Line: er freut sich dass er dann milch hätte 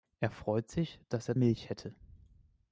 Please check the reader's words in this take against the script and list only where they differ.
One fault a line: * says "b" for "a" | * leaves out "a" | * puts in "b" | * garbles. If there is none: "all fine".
* leaves out "dann"